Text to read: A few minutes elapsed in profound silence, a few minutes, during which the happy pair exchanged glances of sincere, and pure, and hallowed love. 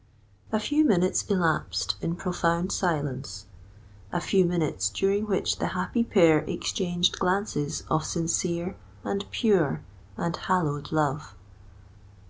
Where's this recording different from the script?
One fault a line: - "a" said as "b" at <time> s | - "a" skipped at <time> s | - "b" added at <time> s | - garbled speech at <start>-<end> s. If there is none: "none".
none